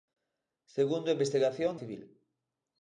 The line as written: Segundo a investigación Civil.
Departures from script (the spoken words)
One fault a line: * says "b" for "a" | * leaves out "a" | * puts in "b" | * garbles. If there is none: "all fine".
all fine